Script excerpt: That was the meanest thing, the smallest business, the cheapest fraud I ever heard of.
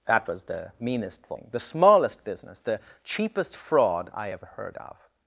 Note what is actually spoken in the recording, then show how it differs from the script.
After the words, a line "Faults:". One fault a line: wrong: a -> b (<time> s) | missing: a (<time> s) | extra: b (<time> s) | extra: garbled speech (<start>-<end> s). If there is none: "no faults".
That was the meanest thing, the smallest business, the cheapest fraud I ever heard of.
Faults:
no faults